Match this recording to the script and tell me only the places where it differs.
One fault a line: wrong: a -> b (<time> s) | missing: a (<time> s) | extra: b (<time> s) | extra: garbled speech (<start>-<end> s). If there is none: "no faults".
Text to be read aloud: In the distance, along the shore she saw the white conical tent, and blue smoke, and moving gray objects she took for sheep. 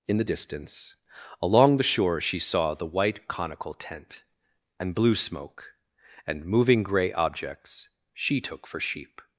no faults